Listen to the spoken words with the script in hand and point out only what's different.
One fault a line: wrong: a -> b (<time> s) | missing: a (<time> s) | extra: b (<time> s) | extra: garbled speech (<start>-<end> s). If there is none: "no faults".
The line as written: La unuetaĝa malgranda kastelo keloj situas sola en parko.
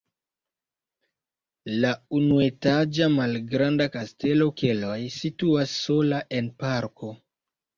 no faults